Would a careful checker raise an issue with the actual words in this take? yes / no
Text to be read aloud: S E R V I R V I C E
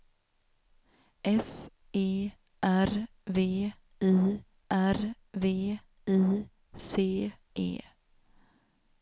no